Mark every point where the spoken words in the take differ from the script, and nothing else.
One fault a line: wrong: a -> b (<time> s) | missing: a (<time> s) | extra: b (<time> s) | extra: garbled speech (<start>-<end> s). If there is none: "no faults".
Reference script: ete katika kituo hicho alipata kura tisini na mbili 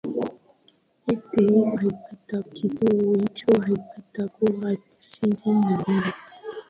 wrong: katika -> alipata (1.8 s)